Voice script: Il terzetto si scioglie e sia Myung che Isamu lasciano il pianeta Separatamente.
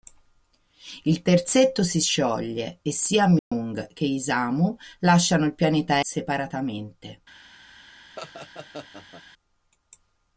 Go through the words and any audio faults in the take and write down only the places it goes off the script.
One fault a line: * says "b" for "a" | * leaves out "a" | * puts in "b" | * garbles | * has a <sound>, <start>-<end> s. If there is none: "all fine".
* has a dropout, 3.4-3.5 s
* has a laugh, 8.2-9.2 s